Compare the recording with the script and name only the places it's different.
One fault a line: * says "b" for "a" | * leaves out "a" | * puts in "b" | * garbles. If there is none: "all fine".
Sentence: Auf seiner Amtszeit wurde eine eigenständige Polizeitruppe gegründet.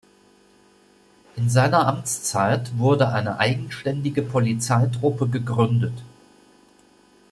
* says "In" for "Auf"